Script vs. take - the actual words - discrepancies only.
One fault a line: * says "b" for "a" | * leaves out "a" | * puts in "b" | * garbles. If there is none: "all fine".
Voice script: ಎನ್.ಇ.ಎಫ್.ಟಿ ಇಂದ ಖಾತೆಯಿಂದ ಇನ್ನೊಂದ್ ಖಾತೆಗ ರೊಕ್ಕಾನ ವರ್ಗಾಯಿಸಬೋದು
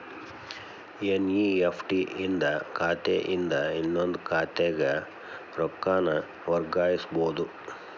all fine